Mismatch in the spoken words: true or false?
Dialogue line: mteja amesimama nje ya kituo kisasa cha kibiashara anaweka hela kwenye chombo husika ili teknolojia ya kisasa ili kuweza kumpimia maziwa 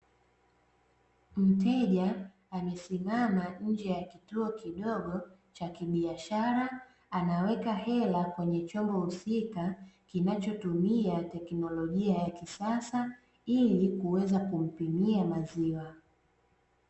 true